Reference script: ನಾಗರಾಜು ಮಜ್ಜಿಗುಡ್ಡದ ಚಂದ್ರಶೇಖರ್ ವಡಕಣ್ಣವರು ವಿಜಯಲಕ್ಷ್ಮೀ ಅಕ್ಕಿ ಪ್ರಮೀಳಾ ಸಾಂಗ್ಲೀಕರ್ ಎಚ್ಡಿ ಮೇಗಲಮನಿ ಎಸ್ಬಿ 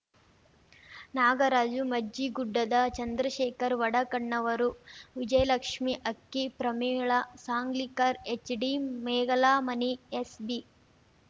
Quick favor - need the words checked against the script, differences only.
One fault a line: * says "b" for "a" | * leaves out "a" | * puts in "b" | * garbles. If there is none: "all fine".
all fine